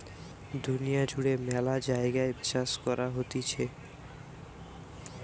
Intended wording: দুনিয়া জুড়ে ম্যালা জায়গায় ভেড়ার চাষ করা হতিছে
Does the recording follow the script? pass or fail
fail